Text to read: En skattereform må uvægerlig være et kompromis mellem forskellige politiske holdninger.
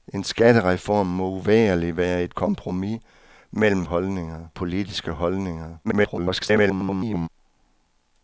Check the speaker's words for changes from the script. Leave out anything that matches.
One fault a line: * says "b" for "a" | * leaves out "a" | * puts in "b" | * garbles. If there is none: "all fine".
* says "holdninger" for "forskellige"
* garbles